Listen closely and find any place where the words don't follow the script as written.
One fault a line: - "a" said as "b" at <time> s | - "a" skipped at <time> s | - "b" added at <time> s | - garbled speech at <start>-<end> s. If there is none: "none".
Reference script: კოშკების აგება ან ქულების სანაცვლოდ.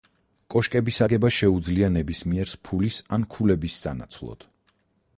- "შეუძლია ნებისმიერს ფულის" added at 1.4 s